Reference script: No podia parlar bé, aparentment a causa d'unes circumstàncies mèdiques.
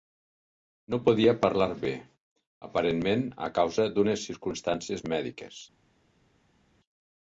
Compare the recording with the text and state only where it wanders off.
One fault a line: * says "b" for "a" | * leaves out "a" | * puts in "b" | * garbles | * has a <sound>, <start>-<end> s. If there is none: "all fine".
all fine